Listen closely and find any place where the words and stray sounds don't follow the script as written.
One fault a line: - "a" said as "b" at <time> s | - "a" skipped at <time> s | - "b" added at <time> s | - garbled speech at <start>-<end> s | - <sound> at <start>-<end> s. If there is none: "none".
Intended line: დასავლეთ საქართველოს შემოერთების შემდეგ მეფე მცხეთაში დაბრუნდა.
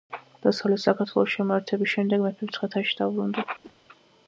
- whoosh at 3.6-3.7 s